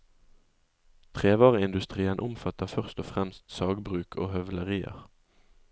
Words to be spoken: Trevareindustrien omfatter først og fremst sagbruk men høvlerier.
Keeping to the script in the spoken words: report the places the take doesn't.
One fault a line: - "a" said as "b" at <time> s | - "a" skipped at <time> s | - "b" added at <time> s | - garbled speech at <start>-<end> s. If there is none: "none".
- "men" said as "og" at 4.2 s